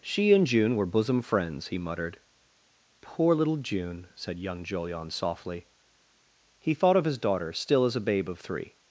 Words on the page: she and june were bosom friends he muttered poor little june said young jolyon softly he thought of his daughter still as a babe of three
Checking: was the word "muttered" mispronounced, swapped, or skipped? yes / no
no